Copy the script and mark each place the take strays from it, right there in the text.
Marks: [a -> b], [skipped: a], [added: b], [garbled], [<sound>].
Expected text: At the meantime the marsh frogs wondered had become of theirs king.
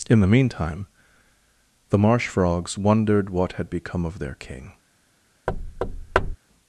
[At -> In] the meantime the marsh frogs wondered [added: what] had become of [theirs -> their] king. [thud]